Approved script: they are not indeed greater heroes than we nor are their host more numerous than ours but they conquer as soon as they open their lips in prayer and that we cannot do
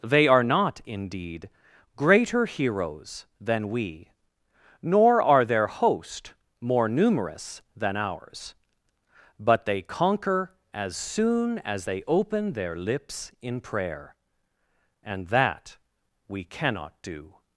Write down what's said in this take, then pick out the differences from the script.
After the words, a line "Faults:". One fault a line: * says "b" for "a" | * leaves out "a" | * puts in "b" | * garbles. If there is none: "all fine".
they are not indeed greater heroes than we nor are their host more numerous than ours but they conquer as soon as they open their lips in prayer and that we cannot do
Faults:
all fine